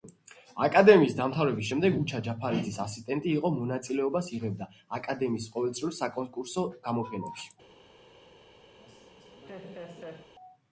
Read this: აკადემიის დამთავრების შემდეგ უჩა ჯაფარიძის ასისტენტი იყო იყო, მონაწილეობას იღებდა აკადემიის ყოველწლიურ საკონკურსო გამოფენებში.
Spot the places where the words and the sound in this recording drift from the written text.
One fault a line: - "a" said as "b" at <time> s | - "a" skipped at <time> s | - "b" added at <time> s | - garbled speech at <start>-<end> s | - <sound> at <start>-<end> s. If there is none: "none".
- "იყო" skipped at 3.5 s
- laugh at 8.8-10.3 s